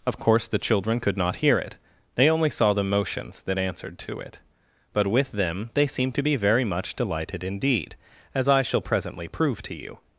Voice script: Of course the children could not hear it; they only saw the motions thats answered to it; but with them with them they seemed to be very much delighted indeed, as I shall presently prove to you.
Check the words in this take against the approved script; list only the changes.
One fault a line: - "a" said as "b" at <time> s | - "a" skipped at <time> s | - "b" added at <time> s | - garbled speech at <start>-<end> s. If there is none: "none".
- "thats" said as "that" at 3.4 s
- "with them" skipped at 5.7 s